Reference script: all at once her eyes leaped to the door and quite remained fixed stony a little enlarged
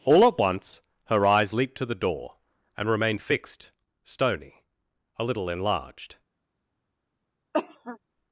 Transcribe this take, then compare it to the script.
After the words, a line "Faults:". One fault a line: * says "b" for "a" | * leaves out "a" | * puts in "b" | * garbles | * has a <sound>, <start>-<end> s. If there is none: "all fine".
all at once her eyes leaped to the door and remained fixed stony a little enlarged
Faults:
* leaves out "quite"
* has a cough, 7.5-8.0 s